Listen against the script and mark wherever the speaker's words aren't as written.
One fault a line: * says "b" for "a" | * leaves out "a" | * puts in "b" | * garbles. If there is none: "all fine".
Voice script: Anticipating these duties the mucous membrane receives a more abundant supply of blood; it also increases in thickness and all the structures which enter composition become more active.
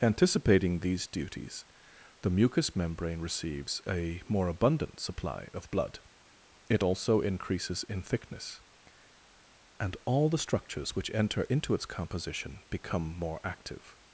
* puts in "into its"